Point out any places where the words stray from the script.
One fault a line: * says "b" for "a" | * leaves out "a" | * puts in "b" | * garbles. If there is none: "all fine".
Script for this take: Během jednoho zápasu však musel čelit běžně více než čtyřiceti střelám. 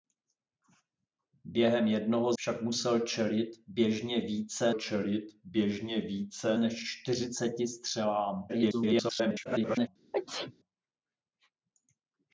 * leaves out "zápasu"
* puts in "čelit běžně více"
* garbles